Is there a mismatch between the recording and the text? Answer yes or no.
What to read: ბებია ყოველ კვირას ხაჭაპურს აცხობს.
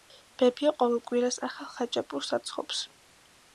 yes